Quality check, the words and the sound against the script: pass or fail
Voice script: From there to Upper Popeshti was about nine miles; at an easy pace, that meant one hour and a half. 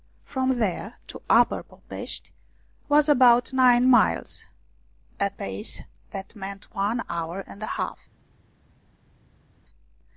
fail